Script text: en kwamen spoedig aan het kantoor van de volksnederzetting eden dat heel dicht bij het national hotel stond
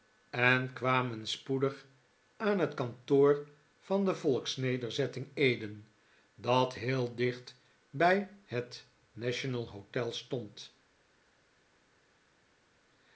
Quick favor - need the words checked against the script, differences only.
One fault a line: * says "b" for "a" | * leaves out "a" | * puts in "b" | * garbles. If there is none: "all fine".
all fine